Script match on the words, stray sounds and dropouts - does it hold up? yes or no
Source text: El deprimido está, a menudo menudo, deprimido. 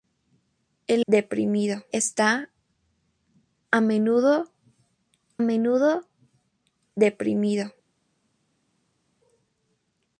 yes